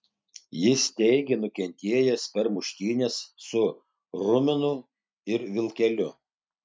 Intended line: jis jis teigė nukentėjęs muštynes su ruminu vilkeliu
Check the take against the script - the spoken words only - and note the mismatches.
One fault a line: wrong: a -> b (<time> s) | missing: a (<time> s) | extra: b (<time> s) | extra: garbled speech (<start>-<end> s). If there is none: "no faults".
missing: jis (0.8 s)
extra: per (2.4 s)
extra: ir (5.4 s)